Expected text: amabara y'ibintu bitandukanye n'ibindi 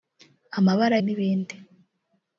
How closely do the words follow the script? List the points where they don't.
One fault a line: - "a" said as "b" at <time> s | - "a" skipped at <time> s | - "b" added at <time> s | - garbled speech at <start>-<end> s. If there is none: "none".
- "y'ibintu bitandukanye" skipped at 0.9 s